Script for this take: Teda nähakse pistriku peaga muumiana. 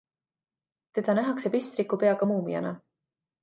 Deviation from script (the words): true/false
false